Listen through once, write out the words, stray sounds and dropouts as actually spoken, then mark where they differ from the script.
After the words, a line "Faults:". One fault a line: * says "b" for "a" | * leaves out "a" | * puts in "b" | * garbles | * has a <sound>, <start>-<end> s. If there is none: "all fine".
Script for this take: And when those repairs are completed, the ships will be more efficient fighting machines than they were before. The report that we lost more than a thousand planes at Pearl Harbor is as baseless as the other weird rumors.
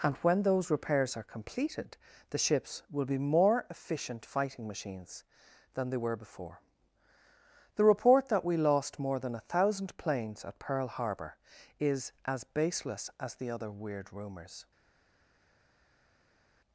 And when those repairs are completed, the ships will be more efficient fighting machines than they were before. The report that we lost more than a thousand planes at Pearl Harbor is as baseless as the other weird rumors.
Faults:
all fine